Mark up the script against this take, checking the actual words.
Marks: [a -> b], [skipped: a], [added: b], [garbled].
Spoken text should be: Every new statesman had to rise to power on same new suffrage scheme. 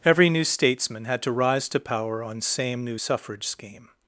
Every new statesman had to rise to power on same new suffrage scheme.